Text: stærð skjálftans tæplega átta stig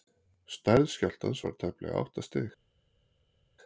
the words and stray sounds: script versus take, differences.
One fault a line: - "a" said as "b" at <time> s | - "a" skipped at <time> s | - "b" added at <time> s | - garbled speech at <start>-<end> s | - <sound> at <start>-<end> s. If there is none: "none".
- "var" added at 1.5 s